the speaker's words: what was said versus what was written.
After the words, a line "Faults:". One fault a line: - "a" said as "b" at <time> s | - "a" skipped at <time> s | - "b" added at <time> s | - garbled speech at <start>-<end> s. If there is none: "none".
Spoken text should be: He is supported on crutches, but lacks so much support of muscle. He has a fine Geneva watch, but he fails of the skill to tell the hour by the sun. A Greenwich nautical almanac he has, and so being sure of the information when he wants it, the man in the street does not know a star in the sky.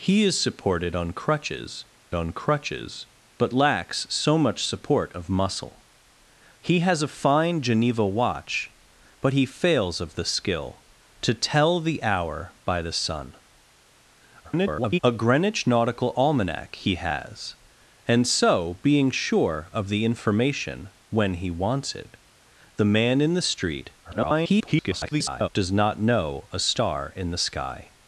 He is supported on crutches on crutches, but lacks so much support of muscle. He has a fine Geneva watch, but he fails of the skill to tell the hour by the sun. [garbled] A Greenwich nautical almanac he has, and so being sure of the information when he wants it, the man in the street [garbled] does not know a star in the sky.
Faults:
- "on crutches" added at 2.1 s
- garbled speech at 14.4-15.0 s
- garbled speech at 24.0-25.5 s